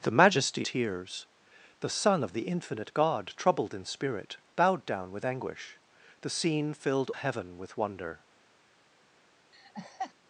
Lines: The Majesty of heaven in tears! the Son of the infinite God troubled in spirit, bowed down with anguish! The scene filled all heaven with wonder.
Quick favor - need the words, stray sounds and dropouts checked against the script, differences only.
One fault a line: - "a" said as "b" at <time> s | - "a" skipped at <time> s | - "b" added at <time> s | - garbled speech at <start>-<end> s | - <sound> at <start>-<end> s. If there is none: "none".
- "of heaven in" skipped at 0.7 s
- "all" skipped at 7.1 s
- laugh at 9.5-10.1 s